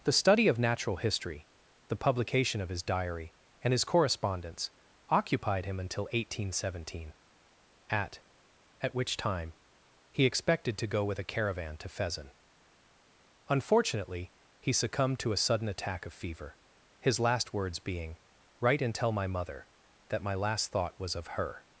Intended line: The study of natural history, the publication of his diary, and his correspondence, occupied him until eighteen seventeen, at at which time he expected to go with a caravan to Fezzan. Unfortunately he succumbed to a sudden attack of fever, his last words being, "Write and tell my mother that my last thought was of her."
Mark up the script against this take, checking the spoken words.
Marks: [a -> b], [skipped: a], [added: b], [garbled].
The study of natural history, the publication of his diary, and his correspondence, occupied him until eighteen seventeen, at at which time he expected to go with a caravan to Fezzan. Unfortunately he succumbed to a sudden attack of fever, his last words being, "Write and tell my mother that my last thought was of her."